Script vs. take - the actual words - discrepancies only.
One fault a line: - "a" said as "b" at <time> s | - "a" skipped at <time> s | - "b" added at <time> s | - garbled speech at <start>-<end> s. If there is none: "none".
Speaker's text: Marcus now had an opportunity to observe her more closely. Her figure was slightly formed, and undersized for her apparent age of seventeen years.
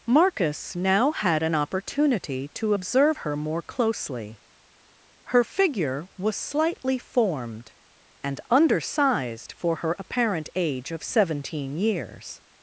none